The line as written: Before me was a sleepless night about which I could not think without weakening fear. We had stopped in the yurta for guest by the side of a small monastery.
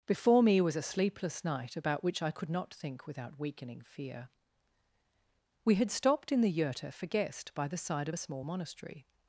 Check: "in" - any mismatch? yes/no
no